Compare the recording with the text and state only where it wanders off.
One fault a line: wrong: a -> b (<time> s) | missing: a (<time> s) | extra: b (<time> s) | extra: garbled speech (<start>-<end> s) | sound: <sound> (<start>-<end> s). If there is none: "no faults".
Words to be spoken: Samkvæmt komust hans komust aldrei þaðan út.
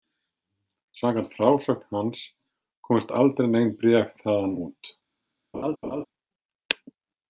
wrong: komust -> frásögn (1.4 s)
extra: nein bréf (3.5 s)
sound: laugh (5.5-6.1 s)